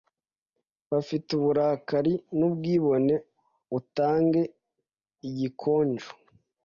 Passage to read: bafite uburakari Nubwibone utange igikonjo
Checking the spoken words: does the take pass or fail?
pass